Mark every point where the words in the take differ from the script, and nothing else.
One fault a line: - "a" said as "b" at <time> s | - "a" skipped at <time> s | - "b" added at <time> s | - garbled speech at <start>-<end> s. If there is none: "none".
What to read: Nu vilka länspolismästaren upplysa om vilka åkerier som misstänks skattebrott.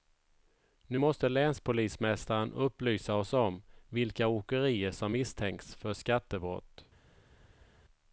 - "vilka" said as "måste" at 1.0 s
- "oss" added at 3.1 s
- "för" added at 5.7 s